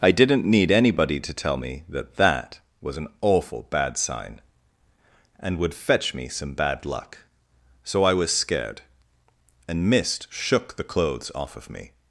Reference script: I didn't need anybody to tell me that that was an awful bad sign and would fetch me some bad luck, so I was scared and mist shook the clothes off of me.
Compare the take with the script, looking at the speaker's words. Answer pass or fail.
pass